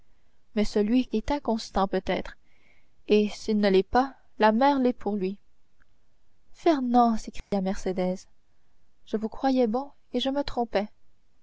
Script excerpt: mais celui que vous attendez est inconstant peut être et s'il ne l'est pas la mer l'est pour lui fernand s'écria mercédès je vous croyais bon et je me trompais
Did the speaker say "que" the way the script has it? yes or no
no